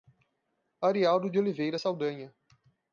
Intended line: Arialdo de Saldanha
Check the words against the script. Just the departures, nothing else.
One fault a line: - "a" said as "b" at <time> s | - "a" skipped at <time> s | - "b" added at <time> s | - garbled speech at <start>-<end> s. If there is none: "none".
- "Oliveira" added at 1.4 s